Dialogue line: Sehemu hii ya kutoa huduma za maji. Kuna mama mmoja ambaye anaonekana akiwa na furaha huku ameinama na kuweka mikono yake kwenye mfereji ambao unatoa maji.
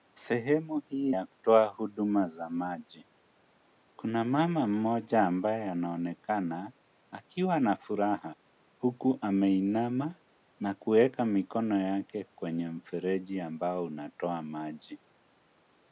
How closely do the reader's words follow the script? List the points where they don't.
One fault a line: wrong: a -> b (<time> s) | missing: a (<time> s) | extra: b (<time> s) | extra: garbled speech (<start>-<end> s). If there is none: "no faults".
no faults